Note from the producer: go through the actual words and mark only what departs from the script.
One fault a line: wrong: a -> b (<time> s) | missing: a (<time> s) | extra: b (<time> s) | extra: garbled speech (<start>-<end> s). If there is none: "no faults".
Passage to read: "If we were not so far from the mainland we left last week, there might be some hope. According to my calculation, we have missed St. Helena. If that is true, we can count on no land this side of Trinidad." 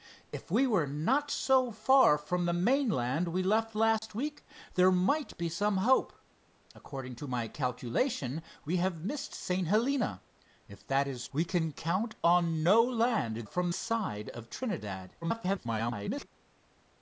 missing: true (11.3 s)
wrong: this -> from (13.4 s)
extra: garbled speech (15.2-16.3 s)